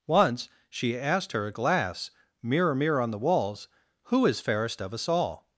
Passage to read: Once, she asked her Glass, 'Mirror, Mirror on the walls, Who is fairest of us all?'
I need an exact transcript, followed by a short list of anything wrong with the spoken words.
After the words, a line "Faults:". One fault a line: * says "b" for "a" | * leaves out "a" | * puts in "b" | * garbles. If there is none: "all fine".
Once, she asked her Glass, 'Mirror, Mirror on the walls, Who is fairest of us all?'
Faults:
all fine